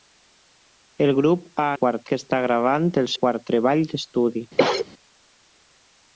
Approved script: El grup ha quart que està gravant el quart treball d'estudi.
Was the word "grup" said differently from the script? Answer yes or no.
no